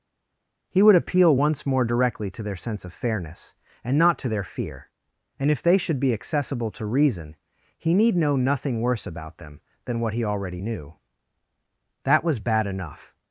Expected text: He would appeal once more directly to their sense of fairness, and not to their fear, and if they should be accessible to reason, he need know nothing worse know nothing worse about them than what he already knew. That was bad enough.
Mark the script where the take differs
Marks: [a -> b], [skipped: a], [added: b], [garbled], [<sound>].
He would appeal once more directly to their sense of fairness, and not to their fear, and if they should be accessible to reason, he need know nothing worse [skipped: know nothing worse] about them than what he already knew. That was bad enough.